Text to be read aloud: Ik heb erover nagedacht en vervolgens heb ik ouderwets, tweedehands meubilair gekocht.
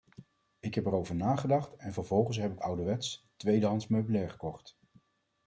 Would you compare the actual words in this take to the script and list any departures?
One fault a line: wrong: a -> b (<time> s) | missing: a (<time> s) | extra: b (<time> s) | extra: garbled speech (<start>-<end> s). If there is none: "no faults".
no faults